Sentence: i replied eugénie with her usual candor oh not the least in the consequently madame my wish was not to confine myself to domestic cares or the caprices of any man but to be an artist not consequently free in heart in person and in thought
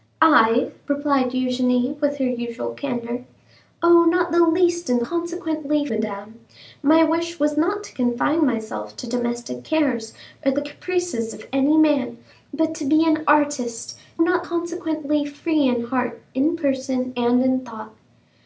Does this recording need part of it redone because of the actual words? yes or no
no